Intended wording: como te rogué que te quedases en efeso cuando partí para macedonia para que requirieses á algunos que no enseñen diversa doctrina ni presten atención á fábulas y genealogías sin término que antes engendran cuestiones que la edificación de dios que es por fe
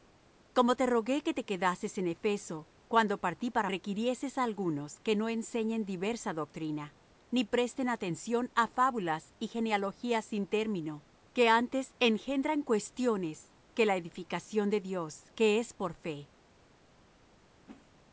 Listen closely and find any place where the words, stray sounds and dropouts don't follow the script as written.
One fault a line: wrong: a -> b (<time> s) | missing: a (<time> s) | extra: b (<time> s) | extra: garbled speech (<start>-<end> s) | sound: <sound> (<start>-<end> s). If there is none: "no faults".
missing: macedonia para que (3.7 s)
sound: whoosh (17.7-17.9 s)